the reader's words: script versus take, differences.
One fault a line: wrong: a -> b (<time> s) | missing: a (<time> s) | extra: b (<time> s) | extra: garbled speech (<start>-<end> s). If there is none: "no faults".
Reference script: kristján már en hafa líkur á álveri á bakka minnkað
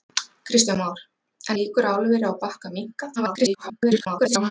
missing: hafa (1.6 s)
extra: garbled speech (3.2-4.5 s)